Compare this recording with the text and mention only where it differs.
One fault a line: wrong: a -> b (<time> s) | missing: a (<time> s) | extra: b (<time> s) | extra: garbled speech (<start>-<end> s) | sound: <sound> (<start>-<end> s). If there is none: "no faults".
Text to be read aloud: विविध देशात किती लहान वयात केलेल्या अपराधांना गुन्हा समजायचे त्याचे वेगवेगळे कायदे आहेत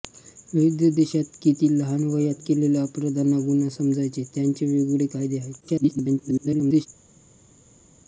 extra: garbled speech (5.6-6.9 s)